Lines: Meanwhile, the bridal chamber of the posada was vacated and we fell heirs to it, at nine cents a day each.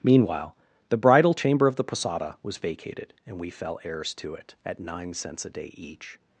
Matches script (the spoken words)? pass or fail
pass